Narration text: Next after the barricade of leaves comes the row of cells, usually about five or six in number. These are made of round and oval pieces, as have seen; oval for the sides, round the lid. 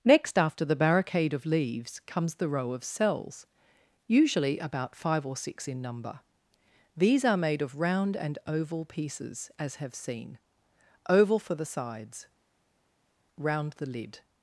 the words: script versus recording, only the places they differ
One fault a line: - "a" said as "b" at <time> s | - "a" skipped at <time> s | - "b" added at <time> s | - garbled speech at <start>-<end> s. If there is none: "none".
none